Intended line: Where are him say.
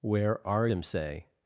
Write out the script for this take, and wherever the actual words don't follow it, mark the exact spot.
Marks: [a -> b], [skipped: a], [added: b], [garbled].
Where are him say.